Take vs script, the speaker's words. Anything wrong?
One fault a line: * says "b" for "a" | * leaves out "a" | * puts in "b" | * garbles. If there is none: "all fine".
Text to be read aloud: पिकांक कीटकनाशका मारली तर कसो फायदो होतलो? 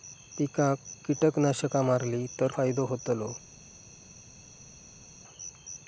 * leaves out "कसो"